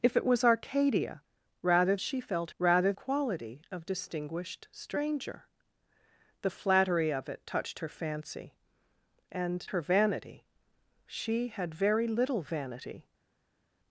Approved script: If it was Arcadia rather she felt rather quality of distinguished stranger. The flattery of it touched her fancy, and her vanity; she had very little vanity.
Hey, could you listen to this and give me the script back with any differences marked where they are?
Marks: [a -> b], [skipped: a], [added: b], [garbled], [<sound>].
If it was Arcadia rather she felt rather quality of distinguished stranger. The flattery of it touched her fancy, and her vanity; she had very little vanity.